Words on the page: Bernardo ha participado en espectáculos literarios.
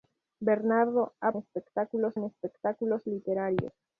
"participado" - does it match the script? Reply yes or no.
no